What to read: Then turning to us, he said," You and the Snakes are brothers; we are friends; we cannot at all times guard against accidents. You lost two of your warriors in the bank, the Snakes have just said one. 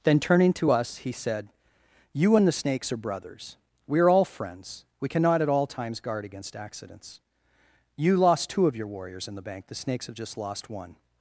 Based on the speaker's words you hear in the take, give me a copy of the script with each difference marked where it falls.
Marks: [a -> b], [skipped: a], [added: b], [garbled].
Then turning to us, he said," You and the Snakes are brothers; we are [added: all] friends; we cannot at all times guard against accidents. You lost two of your warriors in the bank, the Snakes have just [said -> lost] one.